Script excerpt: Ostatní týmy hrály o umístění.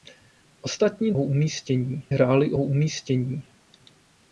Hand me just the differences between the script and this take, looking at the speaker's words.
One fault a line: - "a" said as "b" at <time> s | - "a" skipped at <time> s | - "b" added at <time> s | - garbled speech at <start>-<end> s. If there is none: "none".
- "týmy" said as "umístění" at 1.2 s